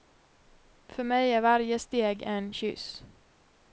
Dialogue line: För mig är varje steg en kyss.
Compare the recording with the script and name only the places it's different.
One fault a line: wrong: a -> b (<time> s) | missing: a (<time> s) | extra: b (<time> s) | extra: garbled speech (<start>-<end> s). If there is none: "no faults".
no faults